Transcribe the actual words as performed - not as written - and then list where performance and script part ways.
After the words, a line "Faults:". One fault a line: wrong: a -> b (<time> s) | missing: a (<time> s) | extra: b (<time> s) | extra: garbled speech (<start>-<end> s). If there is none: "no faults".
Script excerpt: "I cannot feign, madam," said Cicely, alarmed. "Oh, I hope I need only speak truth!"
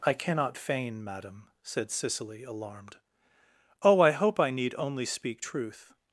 "I cannot feign, madam," said Cicely, alarmed. "Oh, I hope I need only speak truth!"
Faults:
no faults